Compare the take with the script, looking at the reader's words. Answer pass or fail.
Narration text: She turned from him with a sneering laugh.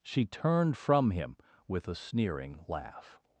pass